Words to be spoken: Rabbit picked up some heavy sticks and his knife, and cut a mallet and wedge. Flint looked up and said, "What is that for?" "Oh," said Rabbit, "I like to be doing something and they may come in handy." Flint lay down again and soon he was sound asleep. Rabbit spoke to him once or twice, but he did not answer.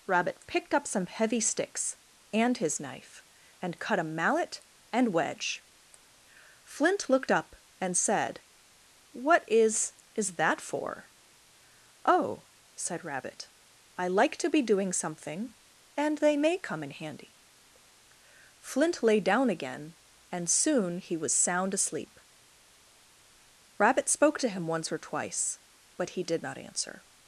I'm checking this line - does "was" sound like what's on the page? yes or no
yes